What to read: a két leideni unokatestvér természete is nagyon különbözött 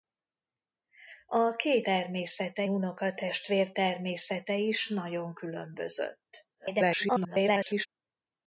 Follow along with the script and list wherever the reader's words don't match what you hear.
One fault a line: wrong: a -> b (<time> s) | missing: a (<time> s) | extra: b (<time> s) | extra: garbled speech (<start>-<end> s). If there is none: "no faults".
wrong: leideni -> természete (1.8 s)
extra: garbled speech (6.5-7.9 s)